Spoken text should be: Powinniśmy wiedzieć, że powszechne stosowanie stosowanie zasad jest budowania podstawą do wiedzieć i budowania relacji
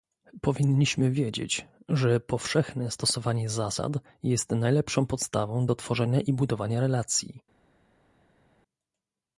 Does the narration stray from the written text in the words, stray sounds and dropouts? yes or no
yes